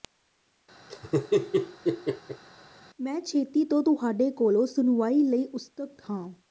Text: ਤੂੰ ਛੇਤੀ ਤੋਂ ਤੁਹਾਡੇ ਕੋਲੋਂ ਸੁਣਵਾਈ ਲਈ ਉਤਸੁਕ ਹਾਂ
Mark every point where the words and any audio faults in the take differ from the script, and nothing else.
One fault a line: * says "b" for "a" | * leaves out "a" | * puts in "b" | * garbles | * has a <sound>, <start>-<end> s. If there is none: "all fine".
* has a laugh, 0.9-2.4 s
* says "ਮੈਂ" for "ਤੂੰ"